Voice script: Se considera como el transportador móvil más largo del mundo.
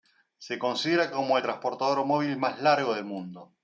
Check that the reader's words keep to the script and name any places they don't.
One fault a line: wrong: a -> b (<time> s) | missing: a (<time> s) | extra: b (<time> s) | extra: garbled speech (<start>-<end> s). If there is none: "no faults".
no faults